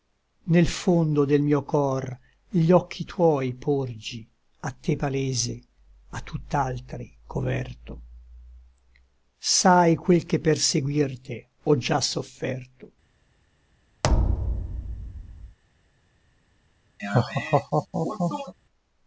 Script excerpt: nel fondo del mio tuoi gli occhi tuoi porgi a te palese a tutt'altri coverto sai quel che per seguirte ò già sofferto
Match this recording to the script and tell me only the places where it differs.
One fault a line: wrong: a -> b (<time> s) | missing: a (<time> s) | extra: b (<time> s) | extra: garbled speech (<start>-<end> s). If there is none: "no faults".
wrong: tuoi -> cor (1.6 s)